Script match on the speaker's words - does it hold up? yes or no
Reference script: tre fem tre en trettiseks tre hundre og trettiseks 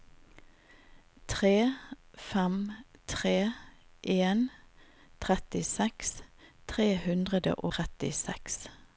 no